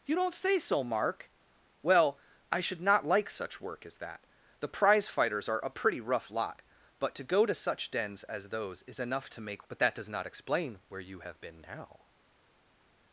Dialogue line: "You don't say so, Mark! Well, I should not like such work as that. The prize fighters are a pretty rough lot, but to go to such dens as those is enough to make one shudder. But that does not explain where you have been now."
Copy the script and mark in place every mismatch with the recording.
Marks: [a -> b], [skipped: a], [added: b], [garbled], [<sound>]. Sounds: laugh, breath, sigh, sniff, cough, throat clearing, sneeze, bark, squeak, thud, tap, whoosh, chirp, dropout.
"You don't say so, Mark! Well, I should not like such work as that. The prize fighters are a pretty rough lot, but to go to such dens as those is enough to make [skipped: one shudder.] But that does not explain where you have been now."